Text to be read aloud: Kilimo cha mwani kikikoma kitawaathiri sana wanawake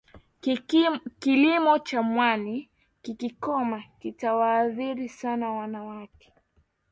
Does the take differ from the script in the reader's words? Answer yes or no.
no